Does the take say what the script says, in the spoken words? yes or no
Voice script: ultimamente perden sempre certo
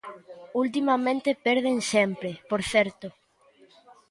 no